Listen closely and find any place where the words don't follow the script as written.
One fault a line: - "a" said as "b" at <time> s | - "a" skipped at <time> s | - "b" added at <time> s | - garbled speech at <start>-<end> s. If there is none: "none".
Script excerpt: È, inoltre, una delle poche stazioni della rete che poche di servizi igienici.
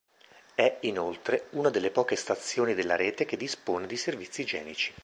- "poche" said as "dispone" at 3.4 s